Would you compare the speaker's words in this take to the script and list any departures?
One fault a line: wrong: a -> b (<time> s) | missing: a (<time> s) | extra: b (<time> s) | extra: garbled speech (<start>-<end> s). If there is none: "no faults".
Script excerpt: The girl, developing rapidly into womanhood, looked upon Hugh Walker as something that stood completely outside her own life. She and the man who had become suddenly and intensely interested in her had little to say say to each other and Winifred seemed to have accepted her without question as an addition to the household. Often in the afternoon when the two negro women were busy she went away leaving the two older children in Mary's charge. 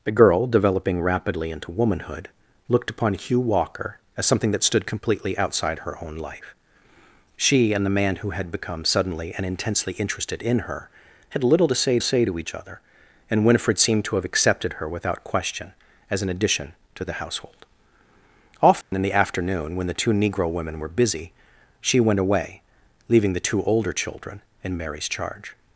no faults